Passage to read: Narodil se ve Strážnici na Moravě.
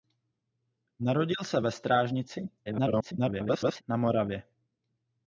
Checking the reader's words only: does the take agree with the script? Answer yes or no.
no